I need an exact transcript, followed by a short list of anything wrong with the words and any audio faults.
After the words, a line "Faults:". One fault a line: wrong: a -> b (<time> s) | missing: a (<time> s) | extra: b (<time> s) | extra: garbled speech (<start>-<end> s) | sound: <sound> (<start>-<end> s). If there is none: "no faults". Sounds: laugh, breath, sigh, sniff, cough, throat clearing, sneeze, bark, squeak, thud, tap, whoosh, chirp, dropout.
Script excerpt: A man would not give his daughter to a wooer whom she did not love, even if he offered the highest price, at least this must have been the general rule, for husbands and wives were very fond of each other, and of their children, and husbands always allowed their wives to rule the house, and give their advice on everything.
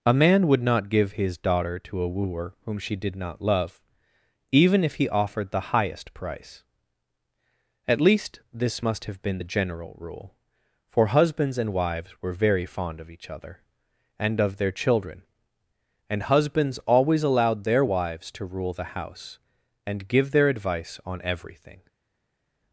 A man would not give his daughter to a wooer whom she did not love, even if he offered the highest price, at least this must have been the general rule, for husbands and wives were very fond of each other, and of their children, and husbands always allowed their wives to rule the house, and give their advice on everything.
Faults:
no faults